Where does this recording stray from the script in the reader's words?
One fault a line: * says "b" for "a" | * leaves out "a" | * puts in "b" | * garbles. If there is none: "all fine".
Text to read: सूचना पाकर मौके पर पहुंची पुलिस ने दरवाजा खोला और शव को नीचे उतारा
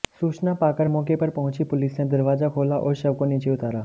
all fine